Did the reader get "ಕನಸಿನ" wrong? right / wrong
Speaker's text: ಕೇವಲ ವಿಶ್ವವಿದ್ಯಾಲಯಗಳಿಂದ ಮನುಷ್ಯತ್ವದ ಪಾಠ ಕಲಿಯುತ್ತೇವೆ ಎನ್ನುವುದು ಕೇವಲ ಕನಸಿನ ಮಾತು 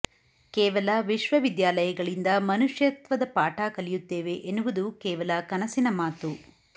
right